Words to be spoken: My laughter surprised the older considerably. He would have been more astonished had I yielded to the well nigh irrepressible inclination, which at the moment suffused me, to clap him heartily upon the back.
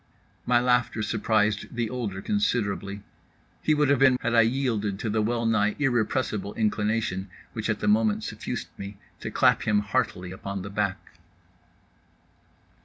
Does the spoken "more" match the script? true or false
false